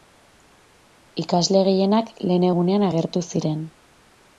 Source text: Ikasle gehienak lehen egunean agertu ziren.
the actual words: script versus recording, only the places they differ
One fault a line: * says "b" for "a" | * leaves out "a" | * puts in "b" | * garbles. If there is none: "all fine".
all fine